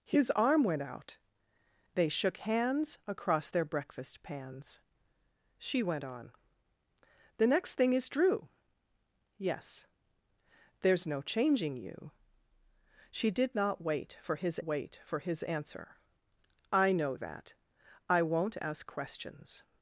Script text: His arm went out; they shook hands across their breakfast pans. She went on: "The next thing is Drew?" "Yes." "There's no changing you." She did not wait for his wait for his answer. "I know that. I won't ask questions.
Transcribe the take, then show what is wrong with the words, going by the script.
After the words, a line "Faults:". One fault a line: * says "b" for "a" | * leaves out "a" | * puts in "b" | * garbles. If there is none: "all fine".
His arm went out; they shook hands across their breakfast pans. She went on: "The next thing is Drew?" "Yes." "There's no changing you." She did not wait for his wait for his answer. "I know that. I won't ask questions.
Faults:
all fine